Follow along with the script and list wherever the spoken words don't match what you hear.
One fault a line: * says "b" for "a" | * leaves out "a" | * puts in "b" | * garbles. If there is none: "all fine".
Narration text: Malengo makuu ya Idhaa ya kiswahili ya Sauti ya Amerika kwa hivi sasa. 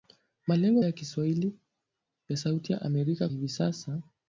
* leaves out "makuu"
* leaves out "Idhaa ya"
* leaves out "kwa"